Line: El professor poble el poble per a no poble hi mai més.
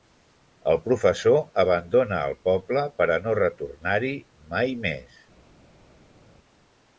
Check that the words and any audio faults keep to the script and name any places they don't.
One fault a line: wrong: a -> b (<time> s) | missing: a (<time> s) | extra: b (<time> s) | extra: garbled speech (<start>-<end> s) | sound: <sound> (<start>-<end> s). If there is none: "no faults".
wrong: poble -> abandona (1.6 s)
wrong: poble -> retornar (3.4 s)